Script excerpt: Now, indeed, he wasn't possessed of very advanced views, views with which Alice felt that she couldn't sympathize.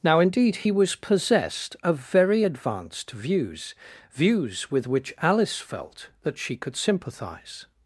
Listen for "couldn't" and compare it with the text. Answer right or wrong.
wrong